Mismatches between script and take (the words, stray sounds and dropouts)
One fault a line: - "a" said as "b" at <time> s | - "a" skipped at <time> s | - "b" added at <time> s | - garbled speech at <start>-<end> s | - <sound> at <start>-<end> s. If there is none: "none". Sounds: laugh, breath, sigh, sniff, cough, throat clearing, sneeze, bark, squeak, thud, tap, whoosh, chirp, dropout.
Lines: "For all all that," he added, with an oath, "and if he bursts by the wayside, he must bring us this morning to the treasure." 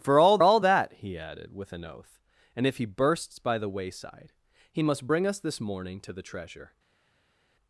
none